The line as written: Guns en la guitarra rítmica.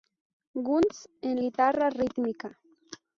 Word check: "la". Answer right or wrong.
wrong